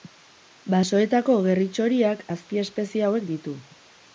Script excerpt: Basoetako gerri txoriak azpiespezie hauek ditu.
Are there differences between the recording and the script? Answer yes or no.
no